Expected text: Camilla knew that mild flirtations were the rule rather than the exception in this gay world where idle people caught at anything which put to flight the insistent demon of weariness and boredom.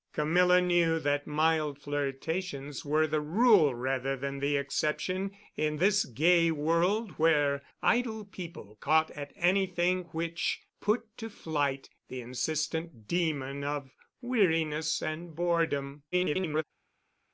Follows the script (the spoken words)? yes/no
no